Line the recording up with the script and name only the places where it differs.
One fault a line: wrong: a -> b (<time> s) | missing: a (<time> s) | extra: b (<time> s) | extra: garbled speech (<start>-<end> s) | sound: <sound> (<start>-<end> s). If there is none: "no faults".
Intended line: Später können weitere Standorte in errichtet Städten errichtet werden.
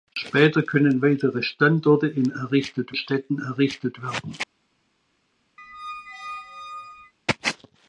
sound: squeak (5.6-7.1 s)